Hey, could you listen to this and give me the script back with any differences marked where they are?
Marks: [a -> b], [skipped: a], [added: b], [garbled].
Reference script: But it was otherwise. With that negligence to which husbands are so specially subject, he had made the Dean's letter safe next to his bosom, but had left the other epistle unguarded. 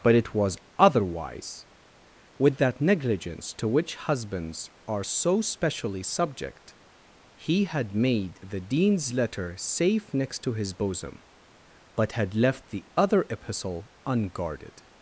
But it was otherwise. With that negligence to which husbands are so specially subject, he had made the Dean's letter safe next to his bosom, but had left the other epistle unguarded.